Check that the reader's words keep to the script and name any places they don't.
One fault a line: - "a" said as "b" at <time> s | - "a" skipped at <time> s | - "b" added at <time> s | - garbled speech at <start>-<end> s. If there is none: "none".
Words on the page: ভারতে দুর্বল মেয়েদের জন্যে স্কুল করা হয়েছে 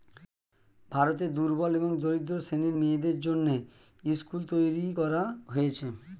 - "এবং দরিদ্র শ্রেণীর" added at 1.8 s
- "তৈরী" added at 4.5 s